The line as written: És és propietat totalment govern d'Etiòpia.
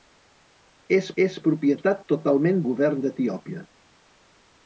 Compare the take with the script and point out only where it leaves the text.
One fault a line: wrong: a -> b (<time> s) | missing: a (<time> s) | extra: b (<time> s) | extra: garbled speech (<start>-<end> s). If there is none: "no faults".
no faults